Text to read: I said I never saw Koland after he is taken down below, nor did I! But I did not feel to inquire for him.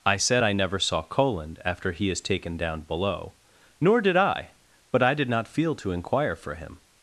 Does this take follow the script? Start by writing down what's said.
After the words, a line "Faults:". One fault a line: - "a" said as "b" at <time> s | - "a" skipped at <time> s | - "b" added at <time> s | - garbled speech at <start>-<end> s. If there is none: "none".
I said I never saw Koland after he is taken down below, nor did I! But I did not feel to inquire for him.
Faults:
none